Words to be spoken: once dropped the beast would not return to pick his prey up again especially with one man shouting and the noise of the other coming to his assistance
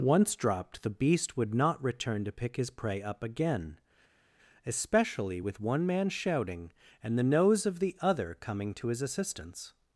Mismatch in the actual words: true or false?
true